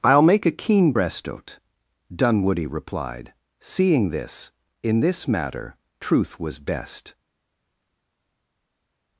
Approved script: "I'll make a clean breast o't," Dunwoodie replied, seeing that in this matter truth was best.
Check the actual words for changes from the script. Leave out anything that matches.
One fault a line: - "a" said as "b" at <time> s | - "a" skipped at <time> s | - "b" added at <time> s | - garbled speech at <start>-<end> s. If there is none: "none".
- "clean" said as "keen" at 0.5 s
- "that" said as "this" at 4.1 s